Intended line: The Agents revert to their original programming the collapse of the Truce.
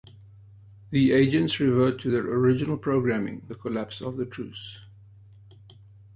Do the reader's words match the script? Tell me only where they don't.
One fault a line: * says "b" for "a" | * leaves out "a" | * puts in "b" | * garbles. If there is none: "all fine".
all fine